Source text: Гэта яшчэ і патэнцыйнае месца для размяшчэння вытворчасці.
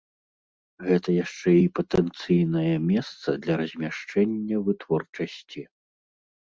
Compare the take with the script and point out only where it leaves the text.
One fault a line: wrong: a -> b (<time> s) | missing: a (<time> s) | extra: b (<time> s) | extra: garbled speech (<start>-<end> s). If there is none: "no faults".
no faults